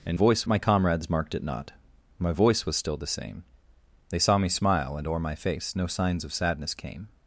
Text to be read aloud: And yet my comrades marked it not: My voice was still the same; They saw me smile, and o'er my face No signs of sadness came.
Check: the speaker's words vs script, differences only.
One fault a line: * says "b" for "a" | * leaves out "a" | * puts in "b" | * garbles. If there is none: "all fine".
* says "voice" for "yet"